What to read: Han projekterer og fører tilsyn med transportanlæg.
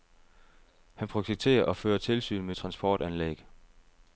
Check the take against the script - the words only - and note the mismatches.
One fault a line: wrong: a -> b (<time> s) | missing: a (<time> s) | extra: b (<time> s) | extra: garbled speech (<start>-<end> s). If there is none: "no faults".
no faults